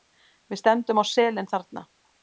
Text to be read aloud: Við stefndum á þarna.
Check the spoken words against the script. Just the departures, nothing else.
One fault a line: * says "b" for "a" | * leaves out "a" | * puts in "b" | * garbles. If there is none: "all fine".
* puts in "selin"